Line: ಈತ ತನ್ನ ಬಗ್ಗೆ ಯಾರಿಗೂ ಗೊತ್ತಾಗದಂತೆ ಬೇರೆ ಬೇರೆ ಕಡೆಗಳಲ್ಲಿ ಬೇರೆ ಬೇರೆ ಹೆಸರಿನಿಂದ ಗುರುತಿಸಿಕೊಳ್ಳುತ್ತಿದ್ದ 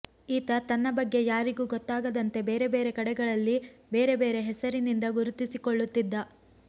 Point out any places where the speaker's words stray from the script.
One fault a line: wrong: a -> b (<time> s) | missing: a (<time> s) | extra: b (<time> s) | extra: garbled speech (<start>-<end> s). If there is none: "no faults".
no faults